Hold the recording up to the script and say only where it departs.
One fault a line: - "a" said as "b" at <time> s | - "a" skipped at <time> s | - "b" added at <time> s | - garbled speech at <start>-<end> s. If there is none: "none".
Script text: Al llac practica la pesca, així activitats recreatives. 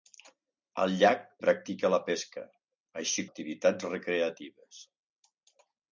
none